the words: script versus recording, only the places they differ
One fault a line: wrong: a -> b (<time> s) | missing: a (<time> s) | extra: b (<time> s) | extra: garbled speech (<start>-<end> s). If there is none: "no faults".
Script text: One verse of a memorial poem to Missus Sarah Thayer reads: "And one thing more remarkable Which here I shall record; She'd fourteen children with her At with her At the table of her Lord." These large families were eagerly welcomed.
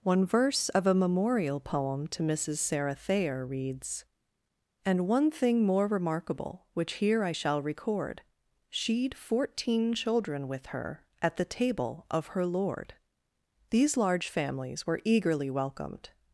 missing: with her At (11.4 s)